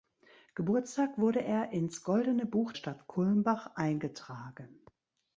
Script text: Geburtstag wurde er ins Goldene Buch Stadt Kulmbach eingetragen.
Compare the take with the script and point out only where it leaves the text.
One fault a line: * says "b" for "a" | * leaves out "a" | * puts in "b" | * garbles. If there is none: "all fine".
all fine